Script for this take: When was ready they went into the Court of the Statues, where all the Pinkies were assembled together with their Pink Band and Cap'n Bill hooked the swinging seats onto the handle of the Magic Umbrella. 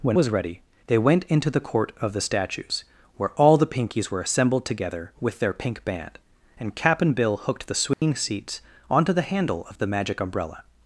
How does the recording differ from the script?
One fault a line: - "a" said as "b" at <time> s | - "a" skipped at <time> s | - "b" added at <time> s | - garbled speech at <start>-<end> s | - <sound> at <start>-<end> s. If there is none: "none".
- dropout at 7.9-8.0 s